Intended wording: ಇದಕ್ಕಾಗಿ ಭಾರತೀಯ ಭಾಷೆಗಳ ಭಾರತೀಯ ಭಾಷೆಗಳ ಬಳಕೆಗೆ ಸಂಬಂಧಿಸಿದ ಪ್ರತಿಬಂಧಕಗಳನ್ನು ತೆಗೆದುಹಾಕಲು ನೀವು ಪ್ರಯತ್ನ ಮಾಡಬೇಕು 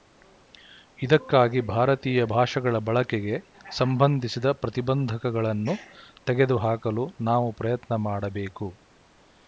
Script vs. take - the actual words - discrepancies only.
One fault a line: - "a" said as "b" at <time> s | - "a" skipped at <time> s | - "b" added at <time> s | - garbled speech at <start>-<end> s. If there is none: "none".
- "ಭಾರತೀಯ ಭಾಷೆಗಳ" skipped at 2.8 s
- "ನೀವು" said as "ನಾವು" at 7.2 s